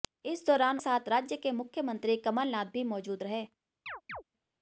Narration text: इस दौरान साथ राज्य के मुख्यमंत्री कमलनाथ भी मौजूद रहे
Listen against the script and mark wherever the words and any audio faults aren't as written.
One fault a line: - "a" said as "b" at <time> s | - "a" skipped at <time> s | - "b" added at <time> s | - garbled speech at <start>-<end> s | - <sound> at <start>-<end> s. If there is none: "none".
- chirp at 3.9-4.2 s